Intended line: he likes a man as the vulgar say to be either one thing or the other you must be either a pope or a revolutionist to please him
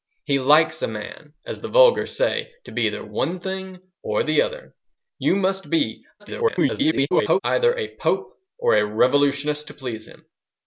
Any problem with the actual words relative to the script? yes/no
yes